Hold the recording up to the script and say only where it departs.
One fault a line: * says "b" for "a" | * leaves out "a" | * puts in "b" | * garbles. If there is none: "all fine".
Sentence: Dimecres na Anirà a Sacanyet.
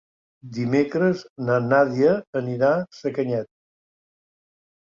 * puts in "Nàdia"